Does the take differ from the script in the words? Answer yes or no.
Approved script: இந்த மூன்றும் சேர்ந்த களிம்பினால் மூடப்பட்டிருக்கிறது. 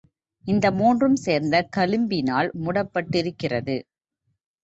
no